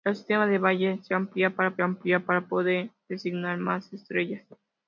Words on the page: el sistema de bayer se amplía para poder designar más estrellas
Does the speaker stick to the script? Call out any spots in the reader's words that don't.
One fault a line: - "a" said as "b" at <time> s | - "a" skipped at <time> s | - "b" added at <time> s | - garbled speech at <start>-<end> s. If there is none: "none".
- "amplía para" added at 1.8 s